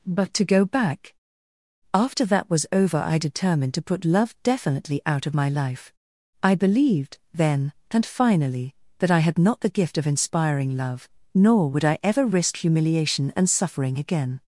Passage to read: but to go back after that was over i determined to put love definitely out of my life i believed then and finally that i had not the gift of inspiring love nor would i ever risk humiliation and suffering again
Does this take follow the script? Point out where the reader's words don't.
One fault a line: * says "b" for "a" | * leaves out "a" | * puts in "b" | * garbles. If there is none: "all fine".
all fine